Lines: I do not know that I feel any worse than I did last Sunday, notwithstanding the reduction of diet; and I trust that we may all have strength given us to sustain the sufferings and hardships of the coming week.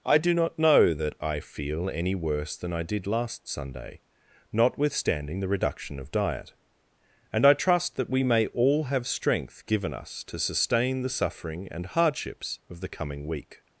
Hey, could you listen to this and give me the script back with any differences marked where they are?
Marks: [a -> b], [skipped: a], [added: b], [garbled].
I do not know that I feel any worse than I did last Sunday, notwithstanding the reduction of diet; and I trust that we may all have strength given us to sustain the [sufferings -> suffering] and hardships of the coming week.